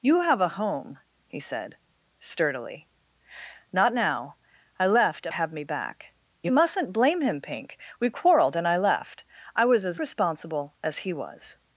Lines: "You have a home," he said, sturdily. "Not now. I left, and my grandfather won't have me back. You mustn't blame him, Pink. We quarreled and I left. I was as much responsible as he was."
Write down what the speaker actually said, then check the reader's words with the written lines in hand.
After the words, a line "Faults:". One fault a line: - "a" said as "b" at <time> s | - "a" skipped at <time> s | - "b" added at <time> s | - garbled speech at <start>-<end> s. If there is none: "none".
"You have a home," he said, sturdily. "Not now. I left, and have me back. You mustn't blame him, Pink. We quarreled and I left. I was as responsible as he was."
Faults:
- "my grandfather won't" skipped at 5.3 s
- "much" skipped at 10.0 s